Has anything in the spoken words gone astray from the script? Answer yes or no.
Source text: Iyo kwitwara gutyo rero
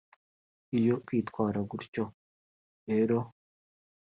no